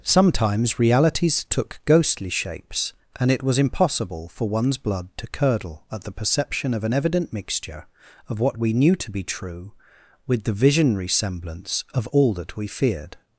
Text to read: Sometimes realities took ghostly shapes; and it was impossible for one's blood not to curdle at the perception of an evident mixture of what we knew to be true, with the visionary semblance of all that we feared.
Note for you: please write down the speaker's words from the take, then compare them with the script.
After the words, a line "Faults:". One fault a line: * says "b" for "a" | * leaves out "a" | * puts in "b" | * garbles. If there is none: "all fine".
Sometimes realities took ghostly shapes; and it was impossible for one's blood to curdle at the perception of an evident mixture of what we knew to be true, with the visionary semblance of all that we feared.
Faults:
* leaves out "not"